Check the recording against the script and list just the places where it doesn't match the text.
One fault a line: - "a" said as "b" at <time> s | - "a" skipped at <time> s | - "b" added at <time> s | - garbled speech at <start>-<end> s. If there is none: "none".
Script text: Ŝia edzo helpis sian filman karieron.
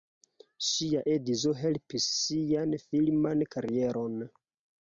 none